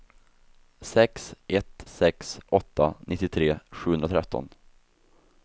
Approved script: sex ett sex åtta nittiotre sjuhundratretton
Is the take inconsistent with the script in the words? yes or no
no